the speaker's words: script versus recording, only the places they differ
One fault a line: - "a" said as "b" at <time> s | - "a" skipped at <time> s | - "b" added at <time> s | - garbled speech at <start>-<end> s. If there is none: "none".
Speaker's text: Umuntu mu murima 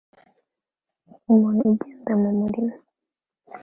- "ugenda" added at 1.7 s